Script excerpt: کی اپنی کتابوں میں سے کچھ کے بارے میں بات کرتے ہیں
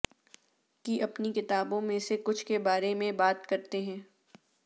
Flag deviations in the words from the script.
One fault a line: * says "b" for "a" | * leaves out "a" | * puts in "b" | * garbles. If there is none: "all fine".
all fine